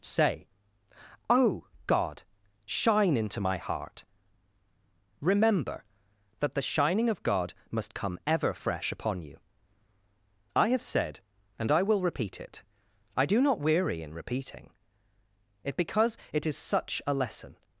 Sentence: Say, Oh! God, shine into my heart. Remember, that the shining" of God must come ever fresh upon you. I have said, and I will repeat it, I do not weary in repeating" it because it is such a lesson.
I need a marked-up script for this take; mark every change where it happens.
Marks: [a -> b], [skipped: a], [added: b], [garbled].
Say, Oh! God, shine into my heart. Remember, that the shining" of God must come ever fresh upon you. I have said, and I will repeat it, I do not weary in repeating" it because it is such a lesson.